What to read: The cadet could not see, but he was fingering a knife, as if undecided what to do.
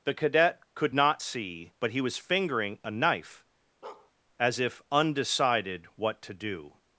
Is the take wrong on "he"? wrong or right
right